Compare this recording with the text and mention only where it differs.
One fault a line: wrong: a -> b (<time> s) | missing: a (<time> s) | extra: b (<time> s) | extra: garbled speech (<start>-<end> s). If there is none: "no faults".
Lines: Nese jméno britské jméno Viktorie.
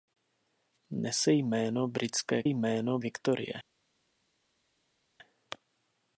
no faults